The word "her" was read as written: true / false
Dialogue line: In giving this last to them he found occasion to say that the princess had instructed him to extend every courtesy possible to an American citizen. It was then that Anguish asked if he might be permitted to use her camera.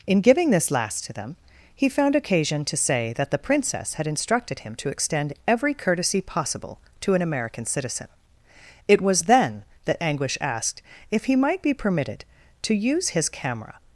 false